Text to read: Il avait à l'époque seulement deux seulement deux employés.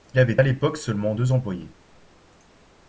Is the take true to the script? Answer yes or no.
no